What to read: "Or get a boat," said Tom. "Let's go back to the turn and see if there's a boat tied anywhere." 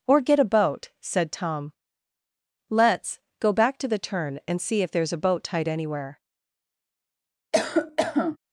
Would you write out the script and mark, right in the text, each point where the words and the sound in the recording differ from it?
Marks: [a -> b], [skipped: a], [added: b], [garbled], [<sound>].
"Or get a boat," said Tom. "Let's go back to the turn and see if there's a boat tied anywhere." [cough]